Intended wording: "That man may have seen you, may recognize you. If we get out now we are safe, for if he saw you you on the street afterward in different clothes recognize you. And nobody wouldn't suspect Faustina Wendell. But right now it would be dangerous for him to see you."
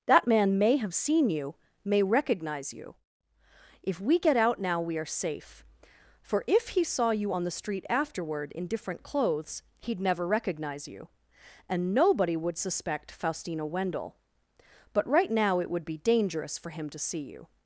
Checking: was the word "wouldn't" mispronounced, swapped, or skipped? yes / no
yes